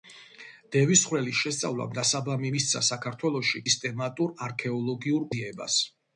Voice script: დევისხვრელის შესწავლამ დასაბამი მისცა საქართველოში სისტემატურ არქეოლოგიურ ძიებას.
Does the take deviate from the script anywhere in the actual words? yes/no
no